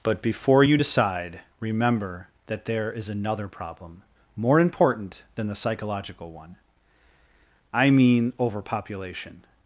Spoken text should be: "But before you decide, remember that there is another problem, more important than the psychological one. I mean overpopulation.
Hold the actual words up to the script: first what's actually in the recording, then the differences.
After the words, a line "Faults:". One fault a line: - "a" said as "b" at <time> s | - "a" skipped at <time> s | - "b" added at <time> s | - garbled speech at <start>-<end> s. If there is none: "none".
"But before you decide, remember that there is another problem, more important than the psychological one. I mean overpopulation.
Faults:
none